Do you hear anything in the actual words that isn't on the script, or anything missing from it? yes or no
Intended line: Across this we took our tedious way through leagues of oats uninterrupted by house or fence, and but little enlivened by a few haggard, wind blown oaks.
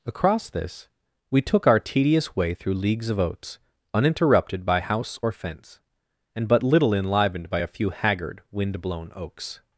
no